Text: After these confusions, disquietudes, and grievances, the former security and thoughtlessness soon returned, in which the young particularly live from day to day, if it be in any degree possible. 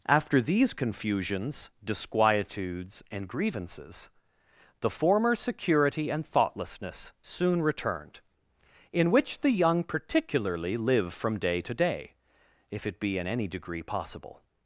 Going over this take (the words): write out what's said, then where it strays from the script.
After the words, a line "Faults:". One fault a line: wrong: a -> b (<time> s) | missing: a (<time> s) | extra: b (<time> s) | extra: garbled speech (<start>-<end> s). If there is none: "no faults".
After these confusions, disquietudes, and grievances, the former security and thoughtlessness soon returned, in which the young particularly live from day to day, if it be in any degree possible.
Faults:
no faults